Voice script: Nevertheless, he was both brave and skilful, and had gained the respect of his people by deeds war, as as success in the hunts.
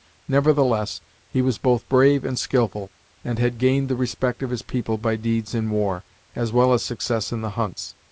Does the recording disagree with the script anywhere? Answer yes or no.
yes